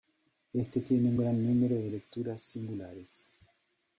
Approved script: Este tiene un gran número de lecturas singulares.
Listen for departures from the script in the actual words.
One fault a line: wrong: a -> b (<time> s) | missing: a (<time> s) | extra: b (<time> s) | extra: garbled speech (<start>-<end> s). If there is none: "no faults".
no faults